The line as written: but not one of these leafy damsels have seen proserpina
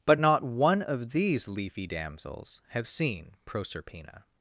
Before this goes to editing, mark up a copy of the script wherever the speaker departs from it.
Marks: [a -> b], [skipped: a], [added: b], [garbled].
but not one of these leafy damsels have seen proserpina